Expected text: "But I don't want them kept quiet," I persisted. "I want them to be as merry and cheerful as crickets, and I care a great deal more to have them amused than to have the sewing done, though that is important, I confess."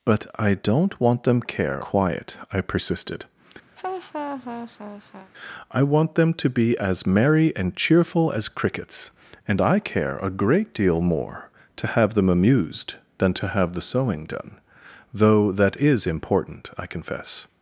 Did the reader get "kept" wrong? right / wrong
wrong